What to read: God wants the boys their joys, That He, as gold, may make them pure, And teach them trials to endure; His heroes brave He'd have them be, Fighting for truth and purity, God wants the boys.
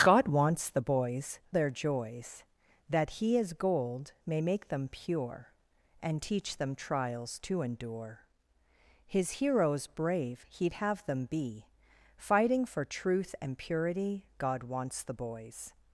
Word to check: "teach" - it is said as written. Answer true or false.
true